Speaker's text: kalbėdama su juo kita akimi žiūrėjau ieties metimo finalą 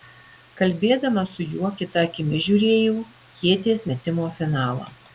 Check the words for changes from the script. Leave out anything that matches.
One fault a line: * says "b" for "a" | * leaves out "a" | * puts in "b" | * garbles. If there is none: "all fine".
all fine